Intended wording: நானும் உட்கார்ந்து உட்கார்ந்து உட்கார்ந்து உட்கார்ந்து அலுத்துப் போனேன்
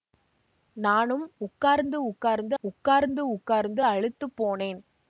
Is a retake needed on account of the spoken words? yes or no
no